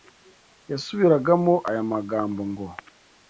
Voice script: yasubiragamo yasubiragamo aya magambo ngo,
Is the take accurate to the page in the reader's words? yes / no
no